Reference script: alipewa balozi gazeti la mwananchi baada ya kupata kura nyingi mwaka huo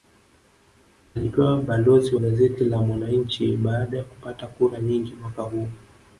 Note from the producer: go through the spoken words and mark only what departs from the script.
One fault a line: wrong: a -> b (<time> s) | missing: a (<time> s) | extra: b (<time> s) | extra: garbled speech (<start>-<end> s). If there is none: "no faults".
no faults